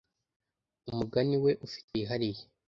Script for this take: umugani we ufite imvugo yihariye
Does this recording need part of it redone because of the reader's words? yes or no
yes